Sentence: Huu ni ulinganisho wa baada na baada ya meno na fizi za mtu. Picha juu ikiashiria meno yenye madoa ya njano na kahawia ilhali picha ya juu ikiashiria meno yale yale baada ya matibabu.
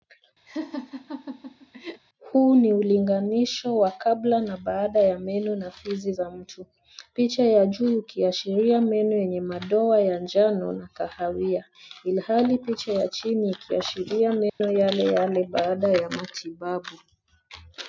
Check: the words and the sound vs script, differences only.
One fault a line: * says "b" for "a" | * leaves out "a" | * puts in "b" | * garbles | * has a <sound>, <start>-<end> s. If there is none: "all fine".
* has a laugh, 0.5-2.0 s
* says "kabla" for "baada"
* puts in "ya"
* says "chini" for "juu"
* has a dropout, 14.5-14.6 s